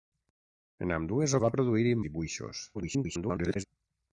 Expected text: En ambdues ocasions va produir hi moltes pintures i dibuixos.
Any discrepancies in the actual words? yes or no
yes